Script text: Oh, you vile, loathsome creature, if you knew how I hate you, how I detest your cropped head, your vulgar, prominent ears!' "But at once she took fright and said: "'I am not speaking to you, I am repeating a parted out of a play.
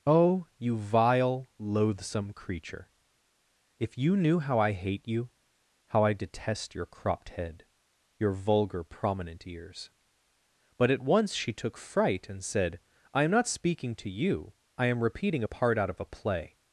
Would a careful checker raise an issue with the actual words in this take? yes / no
yes